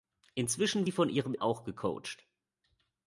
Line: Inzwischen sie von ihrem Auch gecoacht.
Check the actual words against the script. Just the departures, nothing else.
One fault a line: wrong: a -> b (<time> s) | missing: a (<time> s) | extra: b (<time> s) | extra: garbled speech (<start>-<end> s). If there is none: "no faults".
no faults